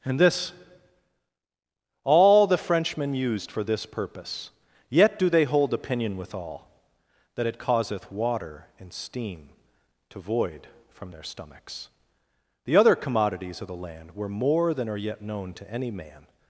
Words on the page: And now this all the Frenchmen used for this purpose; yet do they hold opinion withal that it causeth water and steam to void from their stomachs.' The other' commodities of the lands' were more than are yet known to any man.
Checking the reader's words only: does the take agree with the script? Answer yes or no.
no